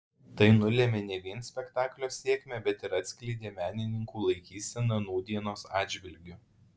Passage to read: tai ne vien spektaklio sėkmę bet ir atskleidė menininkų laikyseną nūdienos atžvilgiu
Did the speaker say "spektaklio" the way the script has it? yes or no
yes